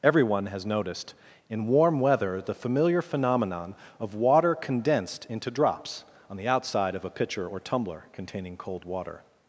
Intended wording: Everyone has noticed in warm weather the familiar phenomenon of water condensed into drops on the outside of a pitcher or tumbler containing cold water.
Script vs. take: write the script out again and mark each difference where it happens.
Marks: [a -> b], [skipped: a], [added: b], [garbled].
Everyone has noticed in warm weather the familiar phenomenon of water condensed into drops on the outside of a pitcher or tumbler containing cold water.